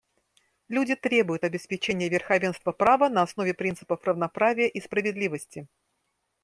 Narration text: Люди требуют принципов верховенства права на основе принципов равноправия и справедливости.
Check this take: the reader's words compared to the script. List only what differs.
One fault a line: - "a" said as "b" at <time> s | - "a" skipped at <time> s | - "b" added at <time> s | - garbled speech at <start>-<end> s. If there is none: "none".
- "принципов" said as "обеспечения" at 1.4 s